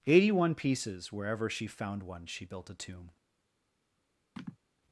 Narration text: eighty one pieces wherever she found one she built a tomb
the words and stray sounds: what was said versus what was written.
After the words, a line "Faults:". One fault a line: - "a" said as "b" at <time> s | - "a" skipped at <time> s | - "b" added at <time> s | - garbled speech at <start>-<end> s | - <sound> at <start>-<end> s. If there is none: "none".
eighty one pieces wherever she found one she built a tomb
Faults:
- sigh at 4.4-4.6 s